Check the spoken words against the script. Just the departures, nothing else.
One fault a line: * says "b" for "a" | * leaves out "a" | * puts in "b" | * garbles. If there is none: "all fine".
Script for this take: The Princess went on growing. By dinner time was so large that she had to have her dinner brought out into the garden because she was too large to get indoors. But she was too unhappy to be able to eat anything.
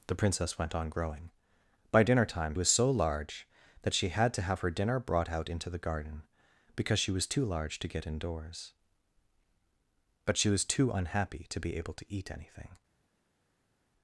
all fine